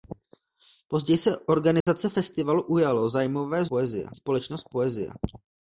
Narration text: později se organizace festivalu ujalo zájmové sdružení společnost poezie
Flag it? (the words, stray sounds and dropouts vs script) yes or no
yes